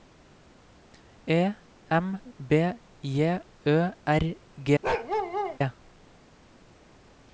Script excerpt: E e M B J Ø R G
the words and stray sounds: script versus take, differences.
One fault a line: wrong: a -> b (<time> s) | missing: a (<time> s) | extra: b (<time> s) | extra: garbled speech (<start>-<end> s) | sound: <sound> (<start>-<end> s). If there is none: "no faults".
missing: e (1.5 s)
sound: bark (4.8-5.6 s)